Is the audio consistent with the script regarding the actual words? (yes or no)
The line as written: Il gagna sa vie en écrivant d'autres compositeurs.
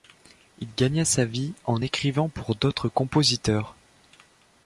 no